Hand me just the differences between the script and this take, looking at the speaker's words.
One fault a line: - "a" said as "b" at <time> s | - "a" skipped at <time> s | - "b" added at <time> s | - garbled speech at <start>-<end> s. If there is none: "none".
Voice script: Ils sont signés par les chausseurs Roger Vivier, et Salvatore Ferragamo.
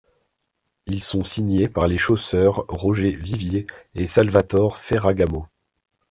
none